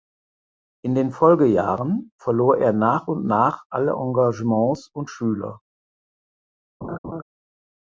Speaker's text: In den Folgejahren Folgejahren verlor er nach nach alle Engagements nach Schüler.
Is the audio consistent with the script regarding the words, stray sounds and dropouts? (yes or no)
no